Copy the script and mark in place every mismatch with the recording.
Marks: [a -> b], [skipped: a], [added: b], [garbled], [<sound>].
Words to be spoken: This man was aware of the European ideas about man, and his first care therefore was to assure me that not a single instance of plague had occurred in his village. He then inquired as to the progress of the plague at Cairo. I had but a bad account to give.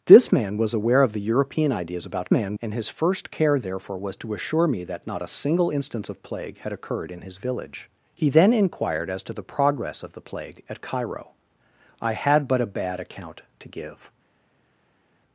This man was aware of the European ideas about man, and his first care therefore was to assure me that not a single instance of plague had occurred in his village. He then inquired as to the progress of the plague at Cairo. I had but a bad account to give.